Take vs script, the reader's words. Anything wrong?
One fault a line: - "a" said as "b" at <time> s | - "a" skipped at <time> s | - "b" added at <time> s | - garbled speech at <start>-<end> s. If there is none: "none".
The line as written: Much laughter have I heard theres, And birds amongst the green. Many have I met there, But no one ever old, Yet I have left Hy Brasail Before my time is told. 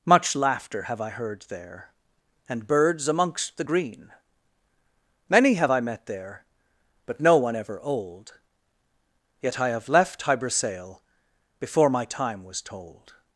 - "theres" said as "there" at 1.5 s
- "is" said as "was" at 12.4 s